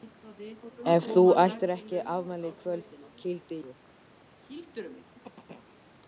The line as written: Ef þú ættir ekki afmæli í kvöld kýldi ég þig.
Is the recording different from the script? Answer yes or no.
yes